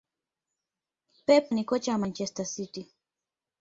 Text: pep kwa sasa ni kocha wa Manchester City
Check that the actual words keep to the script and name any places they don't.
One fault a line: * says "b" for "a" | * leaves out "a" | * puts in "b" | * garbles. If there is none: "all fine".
* leaves out "kwa sasa"